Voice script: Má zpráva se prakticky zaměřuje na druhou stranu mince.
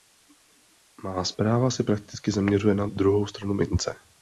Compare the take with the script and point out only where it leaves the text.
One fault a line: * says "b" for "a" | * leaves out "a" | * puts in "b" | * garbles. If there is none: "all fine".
all fine